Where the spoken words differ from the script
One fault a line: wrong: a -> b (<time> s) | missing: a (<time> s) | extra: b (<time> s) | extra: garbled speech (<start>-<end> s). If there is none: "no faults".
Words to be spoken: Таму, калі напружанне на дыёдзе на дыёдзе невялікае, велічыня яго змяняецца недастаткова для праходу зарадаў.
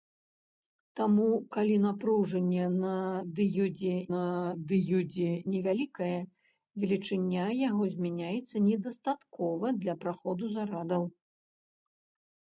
no faults